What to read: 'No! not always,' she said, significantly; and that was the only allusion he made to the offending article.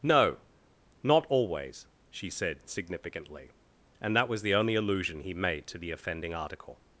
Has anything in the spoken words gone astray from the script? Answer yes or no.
no